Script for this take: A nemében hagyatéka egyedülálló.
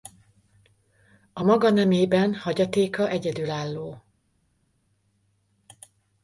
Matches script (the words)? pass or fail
fail